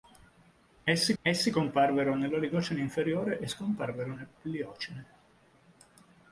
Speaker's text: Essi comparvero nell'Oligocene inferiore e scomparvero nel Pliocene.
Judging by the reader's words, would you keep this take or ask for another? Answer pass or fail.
fail